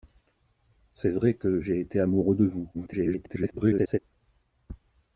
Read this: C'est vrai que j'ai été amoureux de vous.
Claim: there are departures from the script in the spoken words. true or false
true